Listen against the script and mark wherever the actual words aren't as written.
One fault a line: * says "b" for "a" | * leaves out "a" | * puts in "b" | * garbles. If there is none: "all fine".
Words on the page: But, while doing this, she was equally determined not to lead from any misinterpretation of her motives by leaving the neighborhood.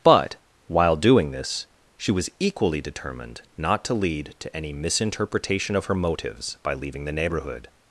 * says "to" for "from"